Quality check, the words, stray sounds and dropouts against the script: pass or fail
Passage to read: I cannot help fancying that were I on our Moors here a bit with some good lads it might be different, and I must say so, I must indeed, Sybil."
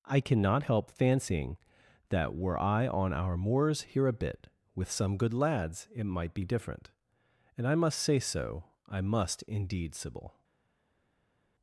pass